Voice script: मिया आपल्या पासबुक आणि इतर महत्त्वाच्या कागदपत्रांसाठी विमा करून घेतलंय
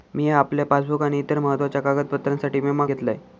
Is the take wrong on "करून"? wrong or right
wrong